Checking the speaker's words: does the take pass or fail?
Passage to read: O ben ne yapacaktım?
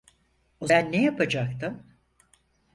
pass